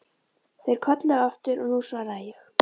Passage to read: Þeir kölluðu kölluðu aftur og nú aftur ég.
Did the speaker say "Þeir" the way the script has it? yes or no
yes